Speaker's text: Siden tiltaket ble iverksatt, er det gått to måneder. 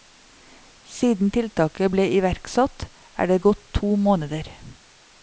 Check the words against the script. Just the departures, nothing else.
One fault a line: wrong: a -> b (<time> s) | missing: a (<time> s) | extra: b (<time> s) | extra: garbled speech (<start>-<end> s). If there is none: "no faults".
no faults